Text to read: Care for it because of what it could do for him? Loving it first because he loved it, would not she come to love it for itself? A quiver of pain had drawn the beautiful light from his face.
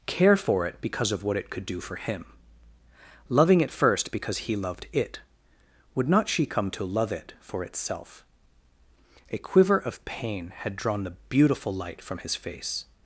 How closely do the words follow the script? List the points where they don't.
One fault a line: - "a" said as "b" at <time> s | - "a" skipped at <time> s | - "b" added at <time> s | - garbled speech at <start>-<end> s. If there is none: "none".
none